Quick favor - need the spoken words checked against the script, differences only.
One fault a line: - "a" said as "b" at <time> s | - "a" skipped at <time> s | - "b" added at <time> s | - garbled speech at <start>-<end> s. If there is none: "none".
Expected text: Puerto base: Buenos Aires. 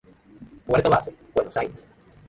none